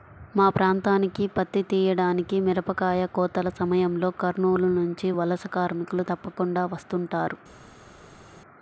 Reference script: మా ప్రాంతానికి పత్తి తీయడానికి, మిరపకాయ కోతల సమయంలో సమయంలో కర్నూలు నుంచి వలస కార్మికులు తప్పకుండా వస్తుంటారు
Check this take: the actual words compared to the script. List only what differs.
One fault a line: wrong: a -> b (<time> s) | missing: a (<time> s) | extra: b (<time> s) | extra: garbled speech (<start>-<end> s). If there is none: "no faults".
missing: సమయంలో (4.1 s)